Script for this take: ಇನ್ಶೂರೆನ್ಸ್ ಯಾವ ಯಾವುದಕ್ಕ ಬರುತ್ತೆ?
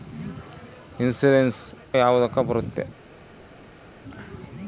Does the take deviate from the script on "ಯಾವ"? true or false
true